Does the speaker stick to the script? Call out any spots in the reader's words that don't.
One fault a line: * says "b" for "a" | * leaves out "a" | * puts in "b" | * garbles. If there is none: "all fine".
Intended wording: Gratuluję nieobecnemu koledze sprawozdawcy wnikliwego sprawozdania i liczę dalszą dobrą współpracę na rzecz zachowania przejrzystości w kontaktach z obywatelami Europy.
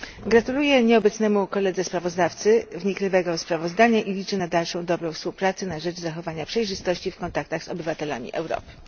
* puts in "na"